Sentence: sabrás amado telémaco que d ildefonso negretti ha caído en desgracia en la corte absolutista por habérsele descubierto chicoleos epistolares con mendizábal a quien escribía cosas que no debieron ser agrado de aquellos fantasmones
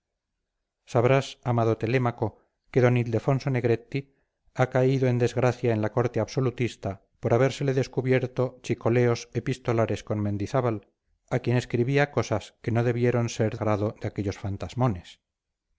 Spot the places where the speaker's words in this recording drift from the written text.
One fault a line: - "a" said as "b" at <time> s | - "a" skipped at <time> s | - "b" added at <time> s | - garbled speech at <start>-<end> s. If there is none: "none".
none